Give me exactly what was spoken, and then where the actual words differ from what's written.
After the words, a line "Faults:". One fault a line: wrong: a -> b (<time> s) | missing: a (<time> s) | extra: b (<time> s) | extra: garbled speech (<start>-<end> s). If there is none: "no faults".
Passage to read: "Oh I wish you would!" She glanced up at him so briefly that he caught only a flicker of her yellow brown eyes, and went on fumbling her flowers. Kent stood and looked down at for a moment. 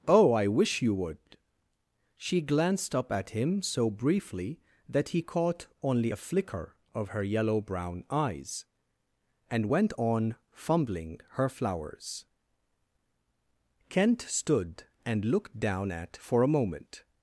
"Oh I wish you would!" She glanced up at him so briefly that he caught only a flicker of her yellow brown eyes, and went on fumbling her flowers. Kent stood and looked down at for a moment.
Faults:
no faults